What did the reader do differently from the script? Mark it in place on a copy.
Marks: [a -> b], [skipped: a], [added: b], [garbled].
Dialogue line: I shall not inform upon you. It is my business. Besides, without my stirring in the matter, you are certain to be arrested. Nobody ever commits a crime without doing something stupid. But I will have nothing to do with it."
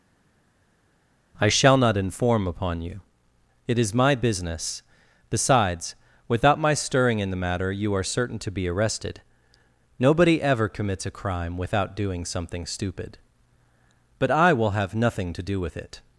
I shall not inform upon you. It is my business. Besides, without my stirring in the matter, you are certain to be arrested. Nobody ever commits a crime without doing something stupid. But I will have nothing to do with it."